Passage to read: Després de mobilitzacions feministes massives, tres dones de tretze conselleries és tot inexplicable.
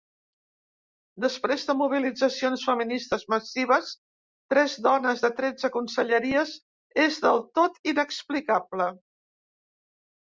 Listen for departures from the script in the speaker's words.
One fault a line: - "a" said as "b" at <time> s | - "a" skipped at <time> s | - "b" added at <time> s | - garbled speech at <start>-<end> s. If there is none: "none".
- "del" added at 7.3 s